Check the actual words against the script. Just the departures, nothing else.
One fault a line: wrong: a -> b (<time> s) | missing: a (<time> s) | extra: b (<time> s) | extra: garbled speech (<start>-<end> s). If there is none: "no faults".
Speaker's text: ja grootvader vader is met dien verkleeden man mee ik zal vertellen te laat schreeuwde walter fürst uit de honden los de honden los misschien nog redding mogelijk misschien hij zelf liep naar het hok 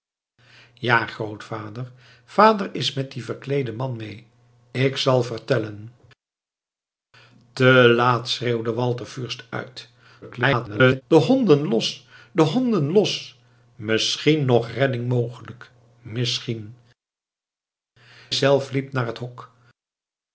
extra: garbled speech (10.2-11.0 s)
missing: hij (16.7 s)